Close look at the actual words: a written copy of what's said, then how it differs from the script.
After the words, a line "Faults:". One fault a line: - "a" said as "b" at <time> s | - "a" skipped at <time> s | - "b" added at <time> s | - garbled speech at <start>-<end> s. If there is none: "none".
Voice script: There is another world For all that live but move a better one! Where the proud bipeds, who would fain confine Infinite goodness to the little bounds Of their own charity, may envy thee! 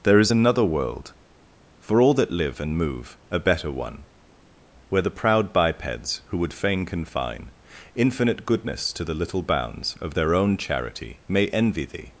There is another world For all that live and move a better one! Where the proud bipeds, who would fain confine Infinite goodness to the little bounds Of their own charity, may envy thee!
Faults:
- "but" said as "and" at 2.6 s